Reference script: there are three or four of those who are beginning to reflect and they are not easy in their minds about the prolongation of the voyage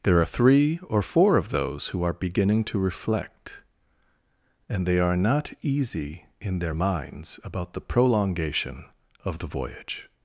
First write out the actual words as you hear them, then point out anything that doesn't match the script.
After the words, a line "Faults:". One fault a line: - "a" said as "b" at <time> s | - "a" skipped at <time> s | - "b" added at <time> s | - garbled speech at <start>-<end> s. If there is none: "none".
there are three or four of those who are beginning to reflect and they are not easy in their minds about the prolongation of the voyage
Faults:
none